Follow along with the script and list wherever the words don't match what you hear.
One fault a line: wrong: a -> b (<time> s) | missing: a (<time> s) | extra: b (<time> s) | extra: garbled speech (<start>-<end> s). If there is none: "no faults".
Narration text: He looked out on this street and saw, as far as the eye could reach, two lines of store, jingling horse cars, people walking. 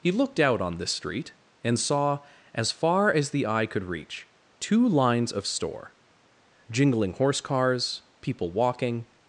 no faults